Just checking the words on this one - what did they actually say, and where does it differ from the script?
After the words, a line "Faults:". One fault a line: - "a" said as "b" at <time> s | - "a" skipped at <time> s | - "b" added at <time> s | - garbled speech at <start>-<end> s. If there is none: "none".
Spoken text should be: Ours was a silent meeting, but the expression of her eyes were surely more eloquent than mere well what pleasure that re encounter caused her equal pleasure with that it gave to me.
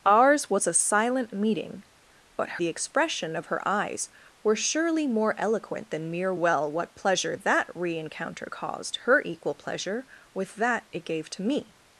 Ours was a silent meeting, but the expression of her eyes were surely more eloquent than mere well what pleasure that re encounter caused her equal pleasure with that it gave to me.
Faults:
none